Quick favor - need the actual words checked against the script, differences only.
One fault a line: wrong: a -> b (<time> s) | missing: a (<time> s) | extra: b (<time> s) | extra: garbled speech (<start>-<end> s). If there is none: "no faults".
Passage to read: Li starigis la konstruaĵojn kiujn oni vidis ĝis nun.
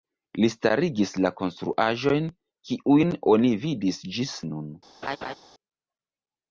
no faults